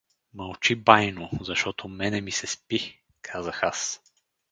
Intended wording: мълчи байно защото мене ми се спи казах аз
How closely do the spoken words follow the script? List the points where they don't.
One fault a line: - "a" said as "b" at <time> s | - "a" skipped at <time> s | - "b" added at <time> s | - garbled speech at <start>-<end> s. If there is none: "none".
none